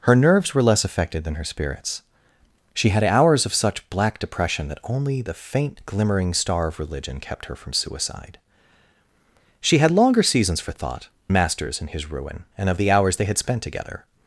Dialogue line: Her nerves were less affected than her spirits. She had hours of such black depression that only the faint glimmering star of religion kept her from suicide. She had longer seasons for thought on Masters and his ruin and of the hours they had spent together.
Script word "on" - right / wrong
wrong